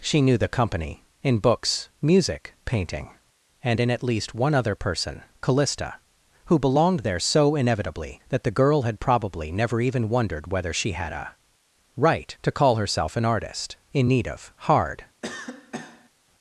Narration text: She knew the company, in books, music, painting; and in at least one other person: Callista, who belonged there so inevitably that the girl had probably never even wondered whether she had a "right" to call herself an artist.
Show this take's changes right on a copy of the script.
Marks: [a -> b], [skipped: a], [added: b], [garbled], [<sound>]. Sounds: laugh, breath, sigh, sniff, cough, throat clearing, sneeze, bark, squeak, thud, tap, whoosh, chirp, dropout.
She knew the company, in books, music, painting; and in at least one other person: Callista, who belonged there so inevitably that the girl had probably never even wondered whether she had a "right" to call herself an artist. [added: In need of hard] [cough]